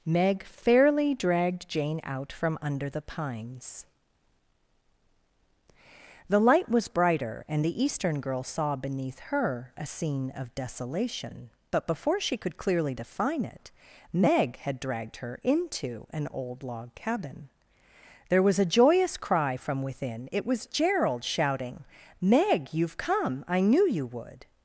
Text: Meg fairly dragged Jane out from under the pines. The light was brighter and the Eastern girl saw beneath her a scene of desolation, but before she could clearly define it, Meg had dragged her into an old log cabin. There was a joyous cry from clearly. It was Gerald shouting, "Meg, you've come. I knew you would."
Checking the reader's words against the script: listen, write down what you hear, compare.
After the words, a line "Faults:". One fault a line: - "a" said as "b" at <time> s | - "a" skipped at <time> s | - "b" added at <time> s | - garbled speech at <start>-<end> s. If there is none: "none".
Meg fairly dragged Jane out from under the pines. The light was brighter and the Eastern girl saw beneath her a scene of desolation, but before she could clearly define it, Meg had dragged her into an old log cabin. There was a joyous cry from within. It was Gerald shouting, "Meg, you've come. I knew you would."
Faults:
- "clearly" said as "within" at 19.8 s